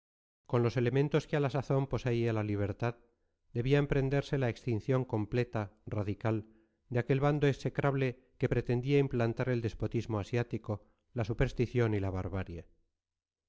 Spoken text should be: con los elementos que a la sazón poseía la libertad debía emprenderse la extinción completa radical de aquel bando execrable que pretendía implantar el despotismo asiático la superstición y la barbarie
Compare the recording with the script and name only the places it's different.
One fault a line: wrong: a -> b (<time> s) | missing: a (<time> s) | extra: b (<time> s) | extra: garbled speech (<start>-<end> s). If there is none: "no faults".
no faults